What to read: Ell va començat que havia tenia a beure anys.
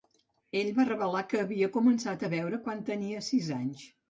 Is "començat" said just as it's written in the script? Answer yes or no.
no